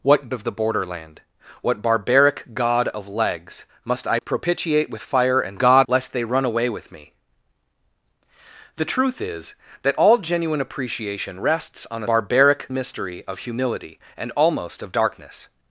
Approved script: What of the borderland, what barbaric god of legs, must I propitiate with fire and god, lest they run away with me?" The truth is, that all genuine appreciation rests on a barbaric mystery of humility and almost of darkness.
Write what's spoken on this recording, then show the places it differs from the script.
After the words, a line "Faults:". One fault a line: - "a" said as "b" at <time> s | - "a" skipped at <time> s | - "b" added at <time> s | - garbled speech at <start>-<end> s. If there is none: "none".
What of the borderland, what barbaric god of legs, must I propitiate with fire and god, lest they run away with me?" The truth is, that all genuine appreciation rests on a barbaric mystery of humility and almost of darkness.
Faults:
none